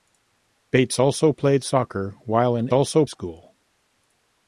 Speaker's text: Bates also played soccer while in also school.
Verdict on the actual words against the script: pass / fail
pass